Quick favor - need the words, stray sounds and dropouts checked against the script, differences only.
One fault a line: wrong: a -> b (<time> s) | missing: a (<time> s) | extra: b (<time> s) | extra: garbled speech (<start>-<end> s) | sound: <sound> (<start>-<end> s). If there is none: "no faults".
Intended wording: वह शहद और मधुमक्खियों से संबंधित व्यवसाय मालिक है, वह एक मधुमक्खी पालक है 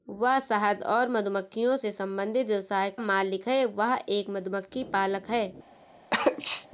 sound: sneeze (6.1-6.7 s)